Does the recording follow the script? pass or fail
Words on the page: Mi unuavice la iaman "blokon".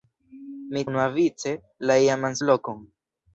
pass